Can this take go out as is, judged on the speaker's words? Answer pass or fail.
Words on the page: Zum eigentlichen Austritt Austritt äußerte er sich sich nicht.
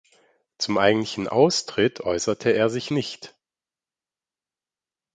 fail